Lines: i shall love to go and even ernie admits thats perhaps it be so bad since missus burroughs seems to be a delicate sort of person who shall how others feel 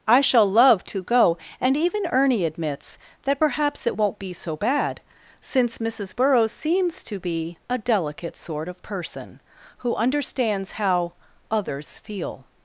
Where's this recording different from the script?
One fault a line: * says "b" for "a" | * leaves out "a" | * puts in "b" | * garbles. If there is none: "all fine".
* says "that" for "thats"
* puts in "won't"
* says "understands" for "shall"